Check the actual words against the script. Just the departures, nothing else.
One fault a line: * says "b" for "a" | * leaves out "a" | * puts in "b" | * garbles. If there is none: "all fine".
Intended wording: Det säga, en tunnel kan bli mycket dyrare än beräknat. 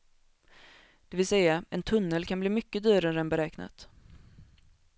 * puts in "vill"